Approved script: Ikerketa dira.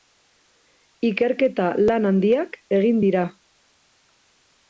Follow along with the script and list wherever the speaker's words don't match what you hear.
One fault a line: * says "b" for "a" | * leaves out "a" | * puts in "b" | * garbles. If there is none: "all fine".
* puts in "lan handiak egin"